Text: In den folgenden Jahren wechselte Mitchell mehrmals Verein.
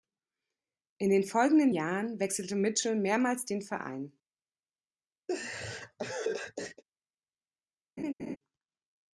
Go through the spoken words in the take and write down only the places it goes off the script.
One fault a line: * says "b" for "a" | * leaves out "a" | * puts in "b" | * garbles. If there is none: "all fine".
* puts in "den"